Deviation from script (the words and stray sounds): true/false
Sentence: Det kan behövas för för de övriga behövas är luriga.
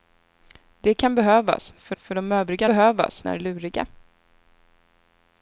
false